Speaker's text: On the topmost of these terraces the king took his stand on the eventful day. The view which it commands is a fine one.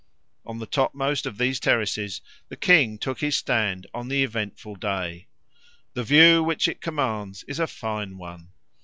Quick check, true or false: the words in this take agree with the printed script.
true